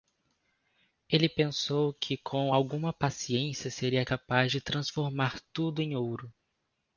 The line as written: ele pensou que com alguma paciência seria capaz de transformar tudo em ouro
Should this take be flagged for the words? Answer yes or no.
no